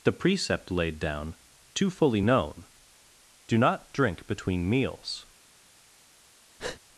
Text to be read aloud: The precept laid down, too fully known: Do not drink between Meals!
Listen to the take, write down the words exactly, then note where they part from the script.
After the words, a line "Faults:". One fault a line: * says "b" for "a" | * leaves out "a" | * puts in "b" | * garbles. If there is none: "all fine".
The precept laid down, too fully known: Do not drink between Meals!
Faults:
all fine